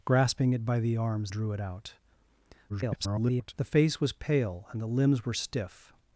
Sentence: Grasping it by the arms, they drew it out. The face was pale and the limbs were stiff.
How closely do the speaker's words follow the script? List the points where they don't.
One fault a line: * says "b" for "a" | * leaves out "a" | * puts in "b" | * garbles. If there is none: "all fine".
* leaves out "they"
* garbles